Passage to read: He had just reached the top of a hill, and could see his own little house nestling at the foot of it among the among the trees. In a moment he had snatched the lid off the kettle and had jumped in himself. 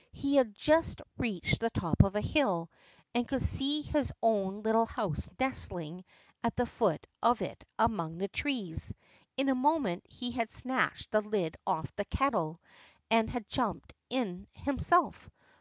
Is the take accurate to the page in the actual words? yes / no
no